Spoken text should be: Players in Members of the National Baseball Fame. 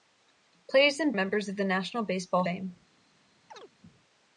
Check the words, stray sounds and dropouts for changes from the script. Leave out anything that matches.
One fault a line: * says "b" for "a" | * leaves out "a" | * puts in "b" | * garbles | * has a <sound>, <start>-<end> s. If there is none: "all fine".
* has a chirp, 3.5-3.7 s